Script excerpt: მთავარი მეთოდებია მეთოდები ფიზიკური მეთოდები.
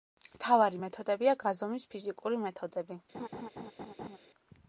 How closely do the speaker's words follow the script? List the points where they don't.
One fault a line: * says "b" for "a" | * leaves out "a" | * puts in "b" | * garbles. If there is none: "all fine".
* says "გაზომვის" for "მეთოდები"